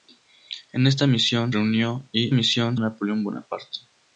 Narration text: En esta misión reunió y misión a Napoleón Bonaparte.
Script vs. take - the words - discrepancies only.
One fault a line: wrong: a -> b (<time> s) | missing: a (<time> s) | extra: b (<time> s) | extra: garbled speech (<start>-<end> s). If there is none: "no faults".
no faults